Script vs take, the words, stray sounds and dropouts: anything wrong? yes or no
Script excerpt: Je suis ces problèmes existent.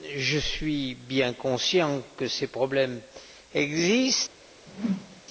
yes